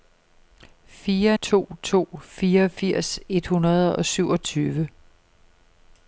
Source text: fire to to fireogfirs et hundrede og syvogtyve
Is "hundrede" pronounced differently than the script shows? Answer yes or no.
no